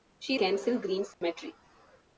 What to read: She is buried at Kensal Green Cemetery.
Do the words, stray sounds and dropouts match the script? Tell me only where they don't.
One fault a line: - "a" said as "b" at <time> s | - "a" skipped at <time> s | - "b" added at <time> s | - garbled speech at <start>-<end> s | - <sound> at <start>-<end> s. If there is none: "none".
- "is buried at" skipped at 0.3 s
- dropout at 1.1-1.2 s